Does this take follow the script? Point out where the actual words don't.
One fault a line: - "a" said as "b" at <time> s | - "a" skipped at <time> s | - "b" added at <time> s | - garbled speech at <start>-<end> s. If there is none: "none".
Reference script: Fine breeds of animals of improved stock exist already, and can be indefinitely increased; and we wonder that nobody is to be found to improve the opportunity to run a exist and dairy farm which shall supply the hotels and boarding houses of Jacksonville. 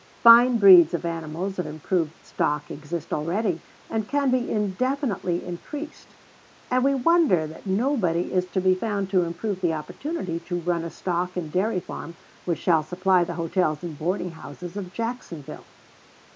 - "exist" said as "stock" at 10.9 s